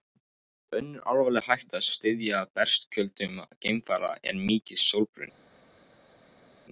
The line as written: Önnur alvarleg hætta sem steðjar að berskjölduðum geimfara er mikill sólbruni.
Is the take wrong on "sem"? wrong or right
wrong